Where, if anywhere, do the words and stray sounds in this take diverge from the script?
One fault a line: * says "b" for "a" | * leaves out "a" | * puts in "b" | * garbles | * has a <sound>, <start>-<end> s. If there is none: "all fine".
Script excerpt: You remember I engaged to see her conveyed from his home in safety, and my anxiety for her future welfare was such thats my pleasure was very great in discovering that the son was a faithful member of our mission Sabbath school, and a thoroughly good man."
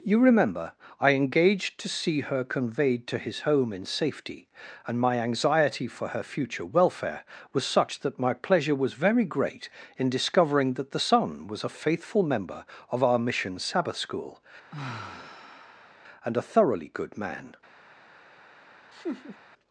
* says "to" for "from"
* says "that" for "thats"
* has a sigh, 14.7-16.0 s
* has a laugh, 18.9-19.4 s